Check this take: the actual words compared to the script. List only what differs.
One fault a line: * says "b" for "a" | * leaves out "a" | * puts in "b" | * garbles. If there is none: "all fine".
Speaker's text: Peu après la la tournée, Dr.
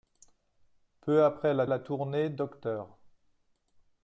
all fine